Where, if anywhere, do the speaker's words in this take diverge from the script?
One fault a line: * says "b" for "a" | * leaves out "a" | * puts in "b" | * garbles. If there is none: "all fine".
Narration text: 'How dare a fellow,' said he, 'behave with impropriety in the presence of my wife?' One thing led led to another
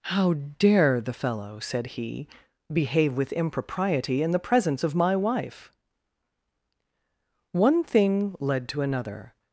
* says "the" for "a"
* leaves out "led"